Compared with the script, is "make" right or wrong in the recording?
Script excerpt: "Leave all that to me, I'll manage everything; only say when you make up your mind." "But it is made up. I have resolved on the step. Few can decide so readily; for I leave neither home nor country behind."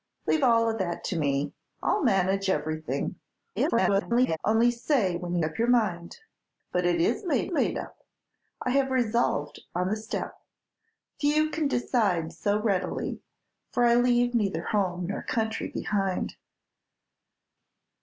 wrong